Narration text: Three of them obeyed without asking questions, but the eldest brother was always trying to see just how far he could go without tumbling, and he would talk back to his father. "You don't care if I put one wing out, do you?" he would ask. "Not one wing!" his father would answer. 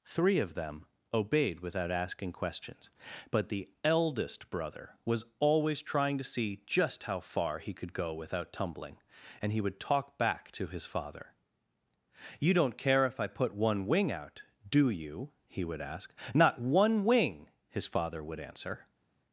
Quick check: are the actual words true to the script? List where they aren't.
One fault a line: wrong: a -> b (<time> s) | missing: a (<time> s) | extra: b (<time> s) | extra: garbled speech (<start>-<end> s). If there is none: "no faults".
no faults